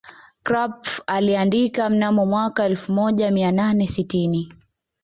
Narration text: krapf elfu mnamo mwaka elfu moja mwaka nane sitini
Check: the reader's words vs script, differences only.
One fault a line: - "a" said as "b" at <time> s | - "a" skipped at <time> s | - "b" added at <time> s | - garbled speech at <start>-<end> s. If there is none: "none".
- "elfu" said as "aliandika" at 1.1 s
- "mwaka" said as "mia" at 3.3 s